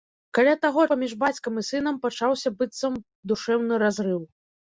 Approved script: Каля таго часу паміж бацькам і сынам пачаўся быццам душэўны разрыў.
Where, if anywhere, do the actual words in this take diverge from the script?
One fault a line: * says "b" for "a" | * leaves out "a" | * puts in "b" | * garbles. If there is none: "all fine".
* leaves out "часу"